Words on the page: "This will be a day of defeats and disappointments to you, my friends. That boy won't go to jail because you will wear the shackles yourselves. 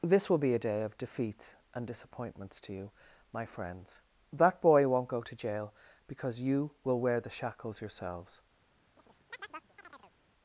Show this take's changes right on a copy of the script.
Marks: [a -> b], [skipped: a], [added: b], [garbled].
"This will be a day of defeats and disappointments to you, my friends. That boy won't go to jail because you will wear the shackles yourselves.